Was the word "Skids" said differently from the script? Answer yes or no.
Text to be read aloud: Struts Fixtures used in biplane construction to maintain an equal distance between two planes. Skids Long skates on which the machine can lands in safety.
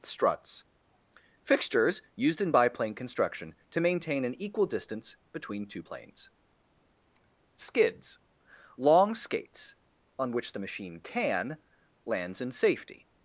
no